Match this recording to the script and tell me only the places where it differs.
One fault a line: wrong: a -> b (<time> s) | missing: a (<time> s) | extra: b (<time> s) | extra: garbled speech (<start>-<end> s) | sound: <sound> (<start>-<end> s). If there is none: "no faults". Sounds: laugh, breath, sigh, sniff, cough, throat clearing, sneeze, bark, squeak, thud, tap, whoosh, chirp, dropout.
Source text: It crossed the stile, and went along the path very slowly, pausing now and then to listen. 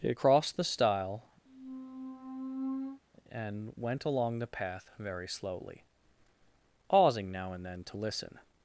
sound: squeak (1.5-3.0 s)